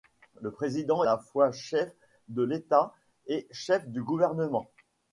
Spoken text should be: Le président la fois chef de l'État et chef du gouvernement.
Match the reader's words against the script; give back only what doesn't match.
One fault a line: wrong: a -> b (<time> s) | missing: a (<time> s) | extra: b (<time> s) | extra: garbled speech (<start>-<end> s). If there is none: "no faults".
no faults